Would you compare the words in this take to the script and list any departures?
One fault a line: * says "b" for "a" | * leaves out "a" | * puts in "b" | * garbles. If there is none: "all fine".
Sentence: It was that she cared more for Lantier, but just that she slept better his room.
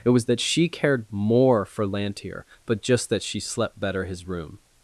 all fine